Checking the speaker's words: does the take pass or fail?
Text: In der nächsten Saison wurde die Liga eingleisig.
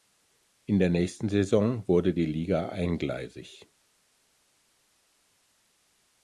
pass